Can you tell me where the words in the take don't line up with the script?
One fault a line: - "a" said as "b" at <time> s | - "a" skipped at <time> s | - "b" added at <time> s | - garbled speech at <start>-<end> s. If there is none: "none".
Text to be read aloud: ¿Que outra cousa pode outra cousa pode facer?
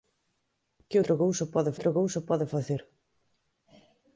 none